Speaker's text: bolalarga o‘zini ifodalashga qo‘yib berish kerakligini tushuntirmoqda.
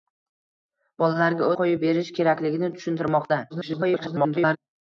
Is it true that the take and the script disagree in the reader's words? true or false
true